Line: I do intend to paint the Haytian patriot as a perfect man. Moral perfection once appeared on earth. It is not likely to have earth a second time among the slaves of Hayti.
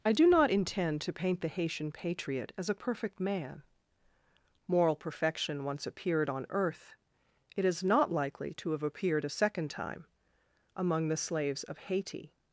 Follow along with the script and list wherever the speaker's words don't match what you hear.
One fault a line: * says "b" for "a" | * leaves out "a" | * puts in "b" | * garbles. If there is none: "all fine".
* puts in "not"
* says "appeared" for "earth"